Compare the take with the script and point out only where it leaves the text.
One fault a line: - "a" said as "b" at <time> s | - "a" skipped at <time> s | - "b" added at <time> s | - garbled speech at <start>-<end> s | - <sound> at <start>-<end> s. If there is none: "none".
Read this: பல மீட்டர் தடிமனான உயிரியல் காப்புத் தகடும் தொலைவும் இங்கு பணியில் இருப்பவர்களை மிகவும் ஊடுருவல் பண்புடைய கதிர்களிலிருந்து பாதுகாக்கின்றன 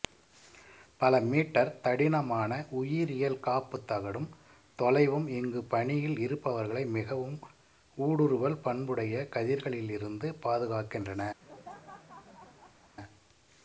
- laugh at 11.4-12.9 s